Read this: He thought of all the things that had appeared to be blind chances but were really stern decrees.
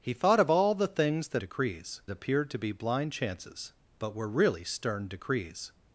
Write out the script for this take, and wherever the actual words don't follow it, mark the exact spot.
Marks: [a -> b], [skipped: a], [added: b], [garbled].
He thought of all the things that [had -> decrees] appeared to be blind chances but were really stern decrees.